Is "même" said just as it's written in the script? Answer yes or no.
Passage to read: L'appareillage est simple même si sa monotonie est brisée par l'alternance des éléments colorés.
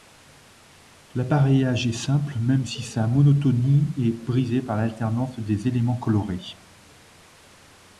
yes